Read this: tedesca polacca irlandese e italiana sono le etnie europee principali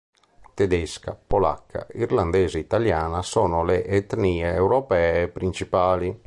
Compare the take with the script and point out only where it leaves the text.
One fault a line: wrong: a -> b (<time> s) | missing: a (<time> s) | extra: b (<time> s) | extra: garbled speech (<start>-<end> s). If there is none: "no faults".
no faults